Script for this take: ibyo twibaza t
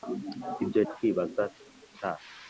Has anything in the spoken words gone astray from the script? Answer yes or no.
no